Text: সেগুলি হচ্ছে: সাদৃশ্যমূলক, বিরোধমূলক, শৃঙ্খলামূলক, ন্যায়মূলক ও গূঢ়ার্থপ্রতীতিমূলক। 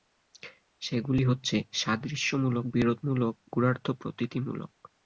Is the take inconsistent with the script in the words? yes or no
yes